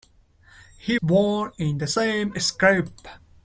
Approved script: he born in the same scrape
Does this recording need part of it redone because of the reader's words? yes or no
no